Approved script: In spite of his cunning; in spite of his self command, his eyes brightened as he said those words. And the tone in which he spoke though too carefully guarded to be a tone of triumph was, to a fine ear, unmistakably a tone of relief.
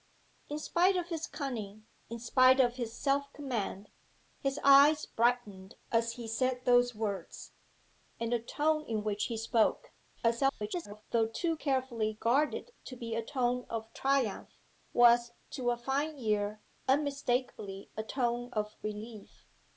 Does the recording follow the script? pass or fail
fail